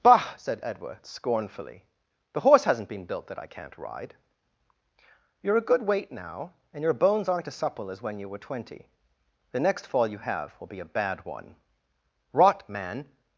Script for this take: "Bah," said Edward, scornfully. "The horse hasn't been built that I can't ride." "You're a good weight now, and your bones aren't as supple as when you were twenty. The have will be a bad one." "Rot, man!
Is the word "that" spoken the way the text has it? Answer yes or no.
yes